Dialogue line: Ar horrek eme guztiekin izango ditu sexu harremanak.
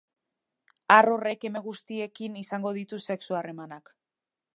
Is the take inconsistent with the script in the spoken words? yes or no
no